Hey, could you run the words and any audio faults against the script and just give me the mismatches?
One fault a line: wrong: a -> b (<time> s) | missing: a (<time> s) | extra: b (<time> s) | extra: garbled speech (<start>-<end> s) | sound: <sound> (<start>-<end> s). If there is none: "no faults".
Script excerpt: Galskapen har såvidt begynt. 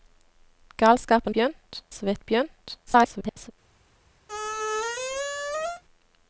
wrong: har -> begynt (1.3 s)
extra: garbled speech (2.9-3.5 s)
sound: squeak (4.3-5.8 s)